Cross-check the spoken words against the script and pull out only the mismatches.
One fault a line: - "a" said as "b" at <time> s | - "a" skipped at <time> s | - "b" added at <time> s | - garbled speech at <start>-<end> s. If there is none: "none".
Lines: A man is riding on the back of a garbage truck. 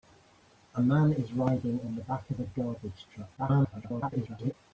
- garbled speech at 3.4-4.5 s